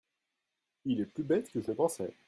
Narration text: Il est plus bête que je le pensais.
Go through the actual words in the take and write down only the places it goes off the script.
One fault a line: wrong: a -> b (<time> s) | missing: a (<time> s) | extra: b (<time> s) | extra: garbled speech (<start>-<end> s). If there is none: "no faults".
no faults